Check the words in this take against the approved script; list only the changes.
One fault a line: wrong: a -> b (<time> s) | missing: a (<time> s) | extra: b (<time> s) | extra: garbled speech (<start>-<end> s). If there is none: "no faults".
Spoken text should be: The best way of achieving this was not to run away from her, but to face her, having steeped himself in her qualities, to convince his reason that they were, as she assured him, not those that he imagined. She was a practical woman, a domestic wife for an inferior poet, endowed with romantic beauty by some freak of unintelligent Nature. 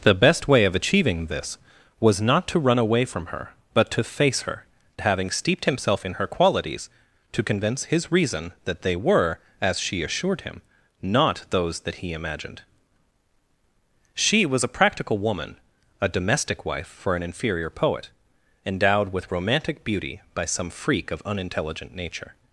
no faults